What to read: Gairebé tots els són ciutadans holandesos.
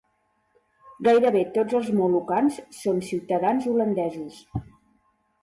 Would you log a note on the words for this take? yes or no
yes